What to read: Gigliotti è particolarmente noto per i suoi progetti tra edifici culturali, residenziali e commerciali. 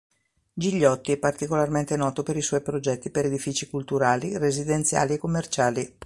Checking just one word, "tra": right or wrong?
wrong